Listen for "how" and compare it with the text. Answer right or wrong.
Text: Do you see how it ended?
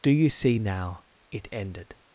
wrong